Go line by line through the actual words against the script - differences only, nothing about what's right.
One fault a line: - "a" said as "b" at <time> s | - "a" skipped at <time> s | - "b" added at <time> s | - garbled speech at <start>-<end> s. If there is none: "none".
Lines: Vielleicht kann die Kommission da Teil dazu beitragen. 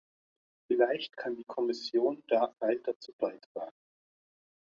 none